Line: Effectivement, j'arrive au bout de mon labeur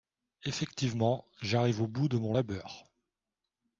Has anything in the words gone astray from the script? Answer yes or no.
no